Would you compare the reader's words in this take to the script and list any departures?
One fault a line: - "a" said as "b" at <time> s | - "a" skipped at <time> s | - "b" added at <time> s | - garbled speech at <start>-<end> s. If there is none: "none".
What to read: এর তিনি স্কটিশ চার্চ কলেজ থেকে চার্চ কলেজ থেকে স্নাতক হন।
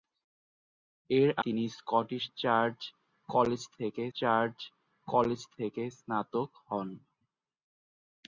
none